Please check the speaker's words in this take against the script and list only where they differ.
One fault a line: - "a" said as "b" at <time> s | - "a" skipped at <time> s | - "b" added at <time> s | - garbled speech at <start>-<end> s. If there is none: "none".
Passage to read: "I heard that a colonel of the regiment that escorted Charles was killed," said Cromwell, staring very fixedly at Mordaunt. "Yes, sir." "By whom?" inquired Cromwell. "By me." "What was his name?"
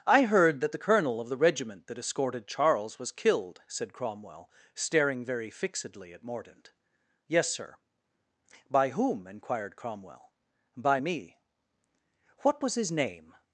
- "a" said as "the" at 0.7 s